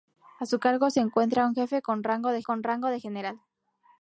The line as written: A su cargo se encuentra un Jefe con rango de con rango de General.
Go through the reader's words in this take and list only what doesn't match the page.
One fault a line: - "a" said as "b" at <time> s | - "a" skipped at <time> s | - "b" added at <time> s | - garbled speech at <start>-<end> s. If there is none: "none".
none